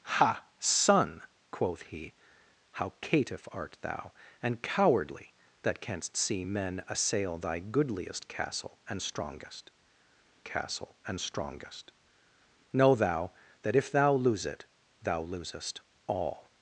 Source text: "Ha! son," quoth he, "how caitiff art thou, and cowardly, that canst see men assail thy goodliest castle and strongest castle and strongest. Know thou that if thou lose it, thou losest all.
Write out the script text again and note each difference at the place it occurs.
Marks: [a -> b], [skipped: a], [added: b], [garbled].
"Ha! son," quoth he, "how caitiff art thou, and cowardly, that canst see men assail thy goodliest castle and strongest castle and strongest. Know thou that if thou lose it, thou losest all.